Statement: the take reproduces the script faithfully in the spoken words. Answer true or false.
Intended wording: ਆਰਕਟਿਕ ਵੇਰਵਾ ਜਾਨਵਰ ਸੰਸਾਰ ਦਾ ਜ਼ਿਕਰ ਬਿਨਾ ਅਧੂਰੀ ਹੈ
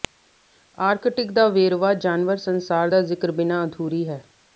false